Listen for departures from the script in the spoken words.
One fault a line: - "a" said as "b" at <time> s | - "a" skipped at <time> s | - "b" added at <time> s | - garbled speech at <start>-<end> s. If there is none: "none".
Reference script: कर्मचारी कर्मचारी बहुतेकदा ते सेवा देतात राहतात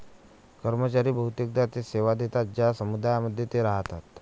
- "कर्मचारी" skipped at 1.1 s
- "ज्या समुदायांमध्ये ते" added at 2.6 s